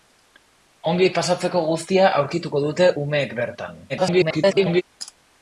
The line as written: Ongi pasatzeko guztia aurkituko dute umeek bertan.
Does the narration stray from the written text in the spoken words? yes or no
yes